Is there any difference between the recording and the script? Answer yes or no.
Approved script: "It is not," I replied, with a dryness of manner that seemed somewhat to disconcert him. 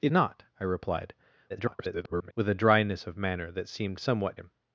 yes